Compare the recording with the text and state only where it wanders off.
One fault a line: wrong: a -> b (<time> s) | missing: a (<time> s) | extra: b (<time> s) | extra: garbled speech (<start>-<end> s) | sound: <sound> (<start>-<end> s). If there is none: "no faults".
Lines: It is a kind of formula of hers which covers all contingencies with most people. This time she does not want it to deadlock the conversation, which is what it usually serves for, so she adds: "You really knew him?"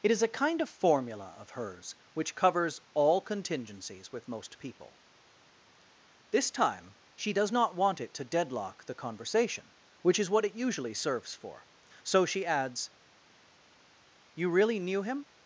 no faults